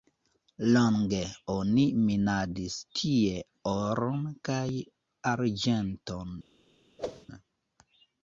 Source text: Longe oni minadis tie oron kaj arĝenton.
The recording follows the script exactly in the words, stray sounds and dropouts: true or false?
false